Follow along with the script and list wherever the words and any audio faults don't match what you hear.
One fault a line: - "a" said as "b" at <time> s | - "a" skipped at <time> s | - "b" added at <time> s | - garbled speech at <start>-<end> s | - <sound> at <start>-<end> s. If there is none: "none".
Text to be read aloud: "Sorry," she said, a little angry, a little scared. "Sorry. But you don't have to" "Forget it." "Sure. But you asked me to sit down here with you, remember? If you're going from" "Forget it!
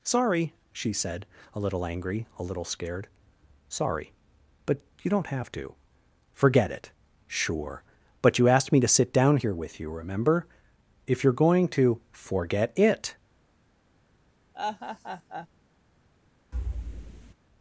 - "from" said as "to" at 11.7 s
- laugh at 14.5-15.5 s
- thud at 16.5-17.3 s